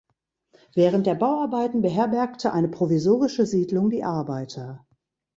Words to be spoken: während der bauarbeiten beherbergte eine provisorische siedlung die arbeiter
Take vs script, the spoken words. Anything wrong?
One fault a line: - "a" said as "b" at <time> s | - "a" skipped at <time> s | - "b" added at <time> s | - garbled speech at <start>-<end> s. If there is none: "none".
none